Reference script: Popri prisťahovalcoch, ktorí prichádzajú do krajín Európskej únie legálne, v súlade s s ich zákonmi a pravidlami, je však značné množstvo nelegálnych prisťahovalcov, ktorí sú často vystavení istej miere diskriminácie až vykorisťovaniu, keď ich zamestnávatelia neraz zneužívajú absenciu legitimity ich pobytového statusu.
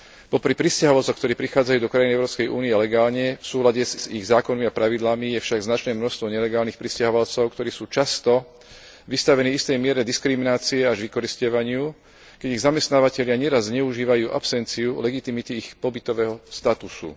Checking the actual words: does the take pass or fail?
pass